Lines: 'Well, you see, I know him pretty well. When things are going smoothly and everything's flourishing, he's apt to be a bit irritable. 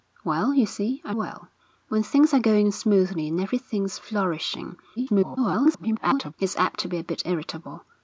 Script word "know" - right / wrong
wrong